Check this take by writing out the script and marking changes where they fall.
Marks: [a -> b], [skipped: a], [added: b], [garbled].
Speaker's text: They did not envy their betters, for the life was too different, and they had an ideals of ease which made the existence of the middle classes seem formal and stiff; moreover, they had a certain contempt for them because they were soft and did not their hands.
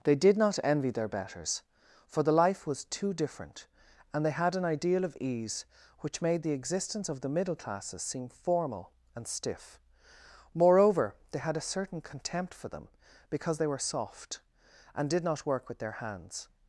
They did not envy their betters, for the life was too different, and they had an [ideals -> ideal] of ease which made the existence of the middle classes seem formal and stiff; moreover, they had a certain contempt for them because they were soft and did not [added: work with] their hands.